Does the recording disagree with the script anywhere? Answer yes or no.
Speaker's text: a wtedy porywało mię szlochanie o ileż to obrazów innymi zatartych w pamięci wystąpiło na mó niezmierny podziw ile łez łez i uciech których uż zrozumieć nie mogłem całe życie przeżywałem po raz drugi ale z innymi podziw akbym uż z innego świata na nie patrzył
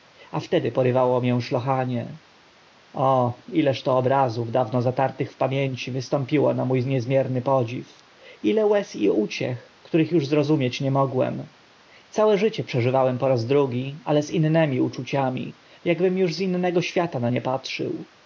yes